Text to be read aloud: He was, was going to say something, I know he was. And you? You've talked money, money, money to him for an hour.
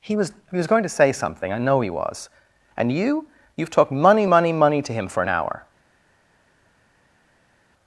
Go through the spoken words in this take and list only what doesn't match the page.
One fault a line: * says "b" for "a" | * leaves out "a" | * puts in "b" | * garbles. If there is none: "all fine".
* puts in "he"